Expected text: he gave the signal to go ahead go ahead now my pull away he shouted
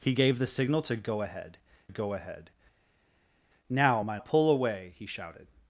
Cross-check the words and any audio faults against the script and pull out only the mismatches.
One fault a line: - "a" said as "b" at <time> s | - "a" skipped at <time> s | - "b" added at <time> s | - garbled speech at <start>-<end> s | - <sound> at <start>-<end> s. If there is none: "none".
none